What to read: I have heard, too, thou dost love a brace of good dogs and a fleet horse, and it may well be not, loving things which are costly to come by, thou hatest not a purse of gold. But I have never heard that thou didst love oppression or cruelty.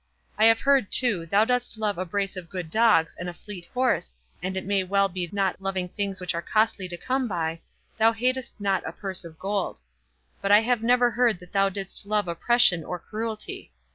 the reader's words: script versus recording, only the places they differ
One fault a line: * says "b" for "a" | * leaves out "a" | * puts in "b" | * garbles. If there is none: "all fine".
all fine